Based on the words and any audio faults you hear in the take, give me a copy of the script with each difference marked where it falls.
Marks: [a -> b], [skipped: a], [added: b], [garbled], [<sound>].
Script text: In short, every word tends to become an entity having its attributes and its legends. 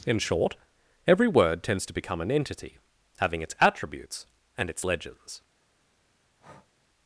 In short, every word tends to become an entity having its attributes and its legends. [breath]